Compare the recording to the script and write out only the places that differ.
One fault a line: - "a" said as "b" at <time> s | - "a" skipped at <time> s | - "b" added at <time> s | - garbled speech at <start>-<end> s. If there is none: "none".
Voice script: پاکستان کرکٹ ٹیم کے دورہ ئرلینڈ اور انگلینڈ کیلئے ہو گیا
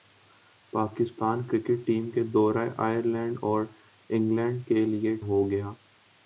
none